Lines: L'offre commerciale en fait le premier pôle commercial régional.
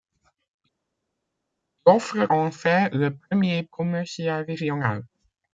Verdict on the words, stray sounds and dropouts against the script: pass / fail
fail